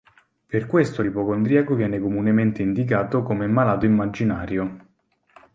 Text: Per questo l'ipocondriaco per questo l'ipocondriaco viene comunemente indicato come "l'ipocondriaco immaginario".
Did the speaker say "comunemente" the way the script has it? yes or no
yes